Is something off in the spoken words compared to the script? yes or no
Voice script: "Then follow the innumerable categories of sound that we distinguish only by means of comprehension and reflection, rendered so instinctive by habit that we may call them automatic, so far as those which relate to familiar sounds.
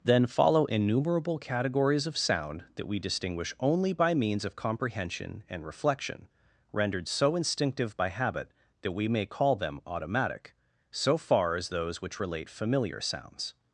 yes